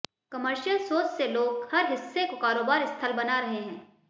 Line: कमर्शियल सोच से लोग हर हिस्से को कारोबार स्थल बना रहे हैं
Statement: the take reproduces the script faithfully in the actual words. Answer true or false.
true